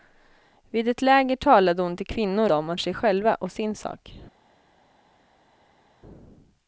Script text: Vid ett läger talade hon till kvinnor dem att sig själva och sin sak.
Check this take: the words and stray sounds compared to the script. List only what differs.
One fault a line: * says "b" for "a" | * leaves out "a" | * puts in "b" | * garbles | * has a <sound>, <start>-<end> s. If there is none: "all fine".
all fine